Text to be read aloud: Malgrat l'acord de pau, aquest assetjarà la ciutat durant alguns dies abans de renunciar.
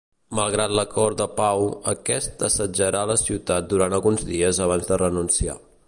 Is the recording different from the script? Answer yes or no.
no